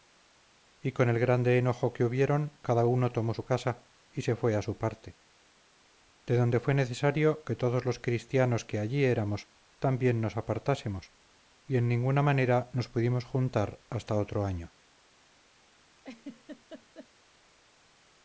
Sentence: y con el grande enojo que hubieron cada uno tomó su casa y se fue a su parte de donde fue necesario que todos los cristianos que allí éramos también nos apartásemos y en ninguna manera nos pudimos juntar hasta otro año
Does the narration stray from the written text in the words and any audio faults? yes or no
yes